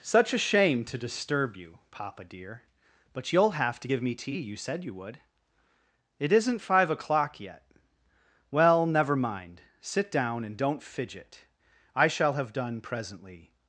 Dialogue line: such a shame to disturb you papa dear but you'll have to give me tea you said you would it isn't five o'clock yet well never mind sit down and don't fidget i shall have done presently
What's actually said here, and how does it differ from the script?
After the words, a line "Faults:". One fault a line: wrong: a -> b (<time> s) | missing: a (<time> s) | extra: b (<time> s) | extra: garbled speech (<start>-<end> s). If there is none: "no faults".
such a shame to disturb you papa dear but you'll have to give me tea you said you would it isn't five o'clock yet well never mind sit down and don't fidget i shall have done presently
Faults:
no faults